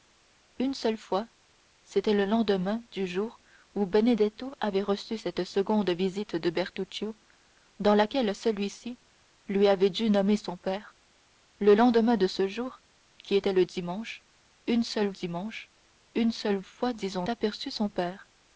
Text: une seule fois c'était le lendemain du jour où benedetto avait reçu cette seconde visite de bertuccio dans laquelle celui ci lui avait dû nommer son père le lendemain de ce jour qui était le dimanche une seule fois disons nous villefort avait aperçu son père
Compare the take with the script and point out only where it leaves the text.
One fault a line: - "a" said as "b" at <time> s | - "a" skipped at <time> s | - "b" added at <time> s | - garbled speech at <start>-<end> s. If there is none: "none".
- "fois disons nous villefort avait" said as "dimanche une seule fois disons" at 15.1 s